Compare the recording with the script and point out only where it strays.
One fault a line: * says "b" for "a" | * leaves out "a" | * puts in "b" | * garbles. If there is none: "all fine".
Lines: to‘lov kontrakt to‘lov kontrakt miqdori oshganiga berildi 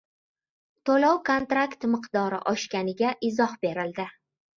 * leaves out "to‘lov kontrakt"
* puts in "izoh"